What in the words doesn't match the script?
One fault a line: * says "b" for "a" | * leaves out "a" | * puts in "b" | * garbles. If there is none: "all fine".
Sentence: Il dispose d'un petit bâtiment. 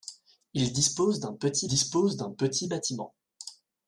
* puts in "dispose d'un petit"